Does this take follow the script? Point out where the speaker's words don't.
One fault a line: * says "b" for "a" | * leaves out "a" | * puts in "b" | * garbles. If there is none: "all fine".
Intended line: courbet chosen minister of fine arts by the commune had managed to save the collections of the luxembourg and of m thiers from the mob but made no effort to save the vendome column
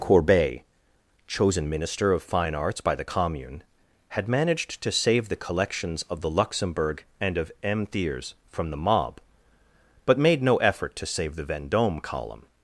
all fine